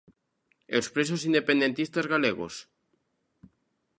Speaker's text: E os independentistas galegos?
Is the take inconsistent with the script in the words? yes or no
yes